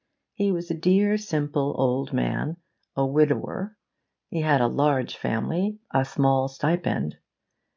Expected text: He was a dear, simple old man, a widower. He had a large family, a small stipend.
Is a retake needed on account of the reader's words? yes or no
no